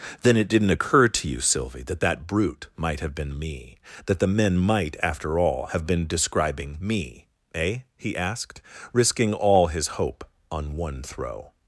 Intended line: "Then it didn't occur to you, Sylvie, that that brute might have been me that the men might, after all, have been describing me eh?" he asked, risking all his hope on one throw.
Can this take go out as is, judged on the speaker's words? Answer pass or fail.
pass